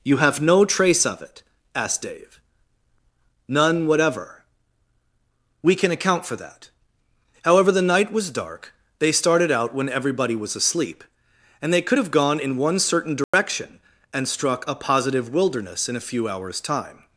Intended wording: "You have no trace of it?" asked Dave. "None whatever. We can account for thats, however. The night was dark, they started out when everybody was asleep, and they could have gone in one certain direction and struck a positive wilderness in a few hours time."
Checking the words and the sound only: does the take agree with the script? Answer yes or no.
no